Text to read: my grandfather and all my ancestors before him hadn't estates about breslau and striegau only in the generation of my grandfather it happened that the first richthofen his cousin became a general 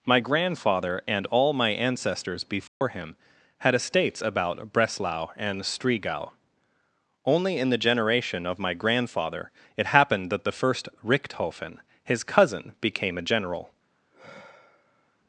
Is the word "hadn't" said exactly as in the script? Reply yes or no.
no